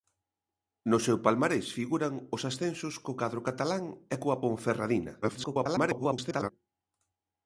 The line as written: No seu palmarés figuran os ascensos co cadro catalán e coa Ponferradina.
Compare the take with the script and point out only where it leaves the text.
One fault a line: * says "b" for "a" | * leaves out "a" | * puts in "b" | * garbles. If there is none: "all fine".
* garbles